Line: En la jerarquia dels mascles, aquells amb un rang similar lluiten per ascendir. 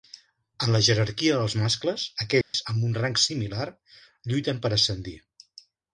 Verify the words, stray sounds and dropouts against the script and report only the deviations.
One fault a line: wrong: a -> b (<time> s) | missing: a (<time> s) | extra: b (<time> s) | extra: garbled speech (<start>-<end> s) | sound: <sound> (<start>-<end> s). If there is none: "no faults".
sound: dropout (2.4-2.5 s)